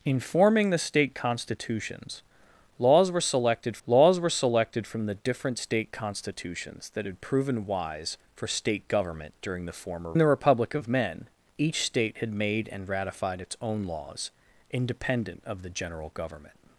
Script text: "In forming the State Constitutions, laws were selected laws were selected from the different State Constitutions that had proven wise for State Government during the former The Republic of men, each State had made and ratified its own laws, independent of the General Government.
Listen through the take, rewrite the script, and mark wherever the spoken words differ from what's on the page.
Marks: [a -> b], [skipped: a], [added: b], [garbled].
"In forming the State Constitutions, laws were selected laws were selected from the different State Constitutions that had proven wise for State Government during the former The Republic of men, each State had made and ratified its own laws, independent of the General Government.